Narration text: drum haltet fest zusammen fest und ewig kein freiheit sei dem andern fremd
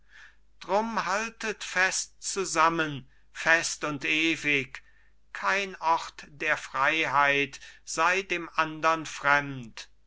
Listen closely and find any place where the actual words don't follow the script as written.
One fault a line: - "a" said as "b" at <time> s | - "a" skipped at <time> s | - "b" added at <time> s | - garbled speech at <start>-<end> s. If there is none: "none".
- "ort der" added at 5.8 s